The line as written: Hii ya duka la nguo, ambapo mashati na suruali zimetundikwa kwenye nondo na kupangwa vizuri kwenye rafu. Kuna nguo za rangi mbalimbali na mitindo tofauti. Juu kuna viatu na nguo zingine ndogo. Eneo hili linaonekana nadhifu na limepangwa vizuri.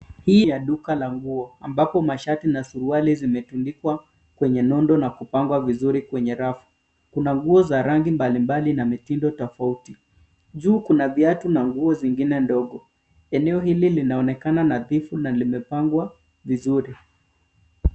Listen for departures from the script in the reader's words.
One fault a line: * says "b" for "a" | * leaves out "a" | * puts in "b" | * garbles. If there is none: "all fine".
all fine